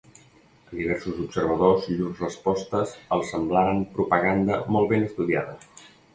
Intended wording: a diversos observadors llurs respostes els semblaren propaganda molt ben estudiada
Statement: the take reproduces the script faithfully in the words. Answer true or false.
true